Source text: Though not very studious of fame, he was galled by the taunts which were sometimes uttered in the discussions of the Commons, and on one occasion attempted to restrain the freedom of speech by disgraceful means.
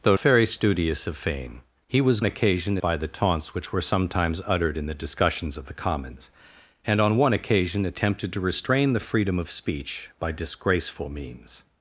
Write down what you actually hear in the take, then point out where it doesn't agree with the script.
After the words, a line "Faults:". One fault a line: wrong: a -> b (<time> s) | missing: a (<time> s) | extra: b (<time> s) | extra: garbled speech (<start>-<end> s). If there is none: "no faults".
Though very studious of fame, he was occasion by the taunts which were sometimes uttered in the discussions of the Commons, and on one occasion attempted to restrain the freedom of speech by disgraceful means.
Faults:
missing: not (0.2 s)
wrong: galled -> occasion (2.2 s)